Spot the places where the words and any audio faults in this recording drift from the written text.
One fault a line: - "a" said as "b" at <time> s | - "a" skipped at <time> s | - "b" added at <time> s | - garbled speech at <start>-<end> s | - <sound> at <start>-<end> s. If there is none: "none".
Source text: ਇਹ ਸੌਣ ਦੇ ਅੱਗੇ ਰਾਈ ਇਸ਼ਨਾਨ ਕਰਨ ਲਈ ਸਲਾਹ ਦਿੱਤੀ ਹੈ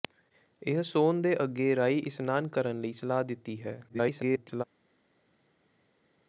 - garbled speech at 3.9-4.6 s